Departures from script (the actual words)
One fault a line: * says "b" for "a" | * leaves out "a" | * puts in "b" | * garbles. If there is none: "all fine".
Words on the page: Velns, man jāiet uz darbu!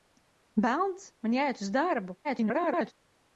* garbles